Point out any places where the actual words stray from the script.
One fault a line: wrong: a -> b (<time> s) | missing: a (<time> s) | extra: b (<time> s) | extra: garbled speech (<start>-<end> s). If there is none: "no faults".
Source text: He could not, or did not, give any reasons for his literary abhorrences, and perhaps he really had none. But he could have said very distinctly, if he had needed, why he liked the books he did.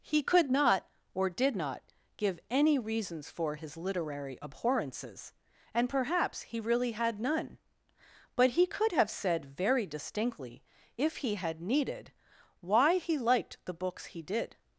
no faults